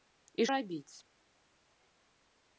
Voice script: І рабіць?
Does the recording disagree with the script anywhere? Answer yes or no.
no